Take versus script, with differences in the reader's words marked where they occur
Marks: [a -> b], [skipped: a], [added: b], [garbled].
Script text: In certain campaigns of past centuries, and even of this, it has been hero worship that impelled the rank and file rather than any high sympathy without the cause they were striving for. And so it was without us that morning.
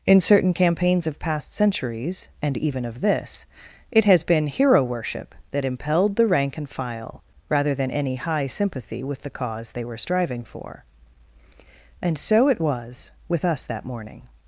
In certain campaigns of past centuries, and even of this, it has been hero worship that impelled the rank and file rather than any high sympathy [without -> with] the cause they were striving for. And so it was [without -> with] us that morning.